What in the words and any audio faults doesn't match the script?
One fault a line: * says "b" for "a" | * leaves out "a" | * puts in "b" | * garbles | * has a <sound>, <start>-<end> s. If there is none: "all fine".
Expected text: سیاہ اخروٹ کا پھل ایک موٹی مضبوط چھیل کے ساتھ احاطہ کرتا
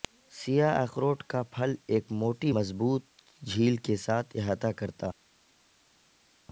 all fine